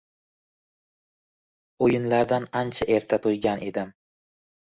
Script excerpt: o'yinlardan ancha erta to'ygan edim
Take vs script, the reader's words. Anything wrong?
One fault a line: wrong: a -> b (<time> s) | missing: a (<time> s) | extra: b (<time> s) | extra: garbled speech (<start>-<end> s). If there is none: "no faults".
no faults